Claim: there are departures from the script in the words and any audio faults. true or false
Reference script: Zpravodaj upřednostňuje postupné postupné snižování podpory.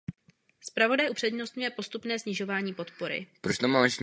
true